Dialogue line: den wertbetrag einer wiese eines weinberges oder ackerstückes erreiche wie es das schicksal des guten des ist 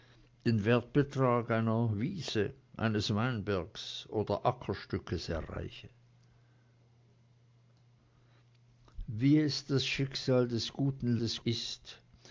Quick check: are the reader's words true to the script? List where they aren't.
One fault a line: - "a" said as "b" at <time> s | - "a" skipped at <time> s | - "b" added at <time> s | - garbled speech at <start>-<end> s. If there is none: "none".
none